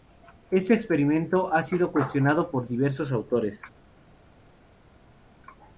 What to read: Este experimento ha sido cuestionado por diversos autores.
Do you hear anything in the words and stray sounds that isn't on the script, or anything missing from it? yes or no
no